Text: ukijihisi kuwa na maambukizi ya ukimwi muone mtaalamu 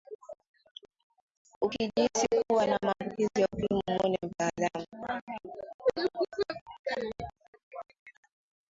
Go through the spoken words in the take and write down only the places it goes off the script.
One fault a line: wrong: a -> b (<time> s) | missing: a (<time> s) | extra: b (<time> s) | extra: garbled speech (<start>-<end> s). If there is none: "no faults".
no faults